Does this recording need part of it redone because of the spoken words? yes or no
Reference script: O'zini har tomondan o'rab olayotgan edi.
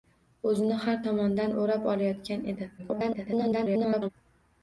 yes